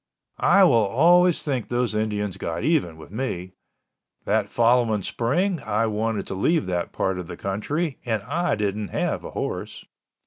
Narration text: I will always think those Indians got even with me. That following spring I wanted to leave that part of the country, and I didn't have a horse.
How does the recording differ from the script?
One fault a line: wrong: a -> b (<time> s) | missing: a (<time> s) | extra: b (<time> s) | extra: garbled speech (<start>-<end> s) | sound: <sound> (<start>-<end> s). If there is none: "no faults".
no faults